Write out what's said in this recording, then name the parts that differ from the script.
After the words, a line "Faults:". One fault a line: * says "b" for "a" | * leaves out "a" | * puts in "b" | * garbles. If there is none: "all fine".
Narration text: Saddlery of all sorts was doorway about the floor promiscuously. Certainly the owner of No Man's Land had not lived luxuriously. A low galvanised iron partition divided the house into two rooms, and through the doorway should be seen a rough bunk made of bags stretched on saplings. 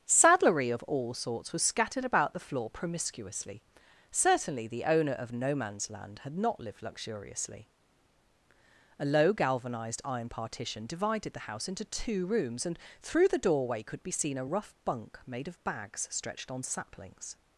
Saddlery of all sorts was scattered about the floor promiscuously. Certainly the owner of No Man's Land had not lived luxuriously. A low galvanised iron partition divided the house into two rooms, and through the doorway could be seen a rough bunk made of bags stretched on saplings.
Faults:
* says "scattered" for "doorway"
* says "could" for "should"